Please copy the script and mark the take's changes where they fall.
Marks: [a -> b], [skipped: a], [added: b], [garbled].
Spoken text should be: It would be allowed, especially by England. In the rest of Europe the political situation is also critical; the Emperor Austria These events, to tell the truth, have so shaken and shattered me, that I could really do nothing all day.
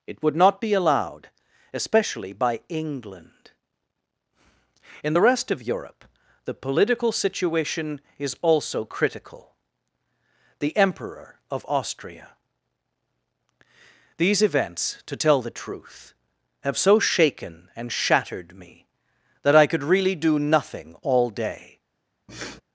It would [added: not] be allowed, especially by England. In the rest of Europe the political situation is also critical; the Emperor [added: of] Austria These events, to tell the truth, have so shaken and shattered me, that I could really do nothing all day.